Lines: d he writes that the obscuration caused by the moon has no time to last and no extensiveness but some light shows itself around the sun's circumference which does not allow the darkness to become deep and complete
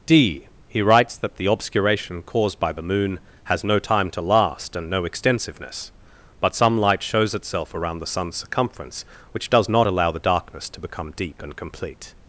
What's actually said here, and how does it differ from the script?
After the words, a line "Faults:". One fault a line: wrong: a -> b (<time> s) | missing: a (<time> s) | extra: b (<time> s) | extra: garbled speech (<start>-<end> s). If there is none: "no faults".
d he writes that the obscuration caused by the moon has no time to last and no extensiveness but some light shows itself around the sun's circumference which does not allow the darkness to become deep and complete
Faults:
no faults